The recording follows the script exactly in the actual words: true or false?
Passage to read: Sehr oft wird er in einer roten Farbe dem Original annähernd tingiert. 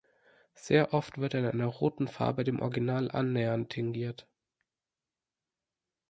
true